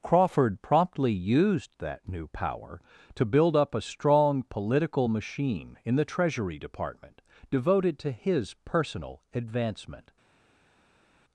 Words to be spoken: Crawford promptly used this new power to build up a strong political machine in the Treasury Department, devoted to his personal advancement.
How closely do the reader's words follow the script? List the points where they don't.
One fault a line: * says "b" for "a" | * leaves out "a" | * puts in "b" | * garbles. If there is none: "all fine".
* says "that" for "this"